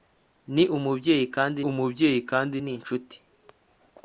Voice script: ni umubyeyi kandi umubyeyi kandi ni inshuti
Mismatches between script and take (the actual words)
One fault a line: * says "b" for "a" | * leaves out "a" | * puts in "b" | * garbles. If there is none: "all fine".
all fine